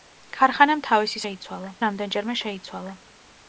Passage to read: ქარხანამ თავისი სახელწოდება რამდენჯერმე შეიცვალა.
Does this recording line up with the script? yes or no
no